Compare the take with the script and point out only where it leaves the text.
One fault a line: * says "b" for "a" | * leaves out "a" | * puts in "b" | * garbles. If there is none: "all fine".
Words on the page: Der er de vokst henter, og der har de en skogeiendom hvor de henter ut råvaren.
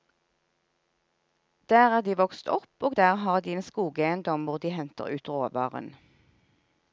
* says "opp" for "henter"